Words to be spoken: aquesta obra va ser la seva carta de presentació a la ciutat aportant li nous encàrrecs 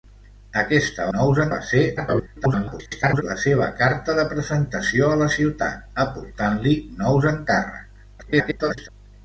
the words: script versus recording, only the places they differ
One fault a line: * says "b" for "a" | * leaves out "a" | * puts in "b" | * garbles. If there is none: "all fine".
* says "nous" for "obra"
* garbles
* garbles